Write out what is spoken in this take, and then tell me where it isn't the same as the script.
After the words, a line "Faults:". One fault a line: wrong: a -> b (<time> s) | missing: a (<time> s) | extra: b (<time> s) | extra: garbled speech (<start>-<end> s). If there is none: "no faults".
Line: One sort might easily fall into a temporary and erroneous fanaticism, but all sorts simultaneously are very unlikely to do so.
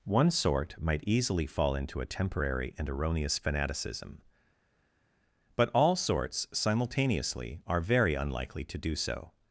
One sort might easily fall into a temporary and erroneous fanaticism, but all sorts simultaneously are very unlikely to do so.
Faults:
no faults